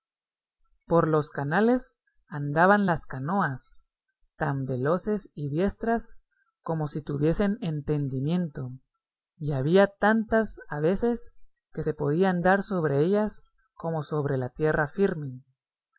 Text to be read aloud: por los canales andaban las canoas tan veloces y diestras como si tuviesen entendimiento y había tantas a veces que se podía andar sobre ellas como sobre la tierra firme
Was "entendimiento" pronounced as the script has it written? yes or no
yes